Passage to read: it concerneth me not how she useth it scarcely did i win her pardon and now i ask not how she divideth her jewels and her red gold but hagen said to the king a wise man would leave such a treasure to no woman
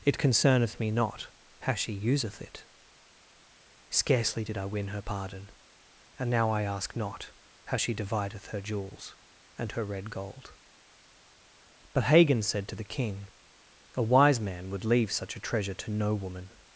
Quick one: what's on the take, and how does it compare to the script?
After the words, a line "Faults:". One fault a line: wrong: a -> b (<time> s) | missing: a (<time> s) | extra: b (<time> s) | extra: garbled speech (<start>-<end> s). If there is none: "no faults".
it concerneth me not how she useth it scarcely did i win her pardon and now i ask not how she divideth her jewels and her red gold but hagen said to the king a wise man would leave such a treasure to no woman
Faults:
no faults